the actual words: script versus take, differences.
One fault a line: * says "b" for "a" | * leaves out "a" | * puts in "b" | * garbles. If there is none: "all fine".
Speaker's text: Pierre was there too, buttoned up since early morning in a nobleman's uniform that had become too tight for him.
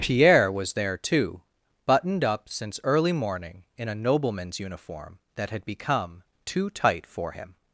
all fine